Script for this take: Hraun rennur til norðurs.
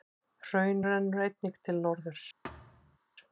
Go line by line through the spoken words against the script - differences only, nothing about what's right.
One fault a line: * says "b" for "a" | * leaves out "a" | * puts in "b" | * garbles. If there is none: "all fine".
* puts in "einnig"